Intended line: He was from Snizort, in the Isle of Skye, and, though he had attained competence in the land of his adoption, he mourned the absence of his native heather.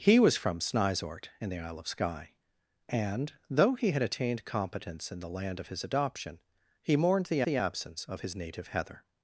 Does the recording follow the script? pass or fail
fail